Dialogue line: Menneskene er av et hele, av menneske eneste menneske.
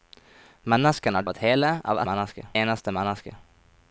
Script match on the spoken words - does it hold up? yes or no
yes